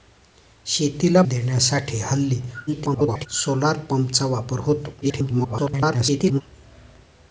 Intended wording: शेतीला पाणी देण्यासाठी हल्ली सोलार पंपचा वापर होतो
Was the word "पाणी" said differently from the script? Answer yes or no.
yes